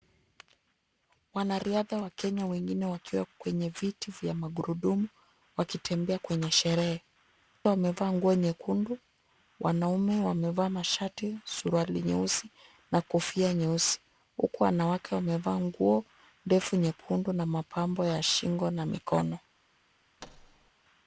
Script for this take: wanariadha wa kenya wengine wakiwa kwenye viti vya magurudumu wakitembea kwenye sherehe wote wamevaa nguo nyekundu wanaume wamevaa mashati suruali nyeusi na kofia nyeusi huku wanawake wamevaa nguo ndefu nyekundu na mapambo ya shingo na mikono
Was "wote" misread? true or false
true